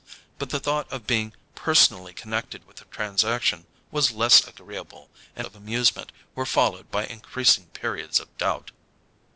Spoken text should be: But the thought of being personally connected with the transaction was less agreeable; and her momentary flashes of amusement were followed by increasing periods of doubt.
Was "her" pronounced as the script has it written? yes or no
no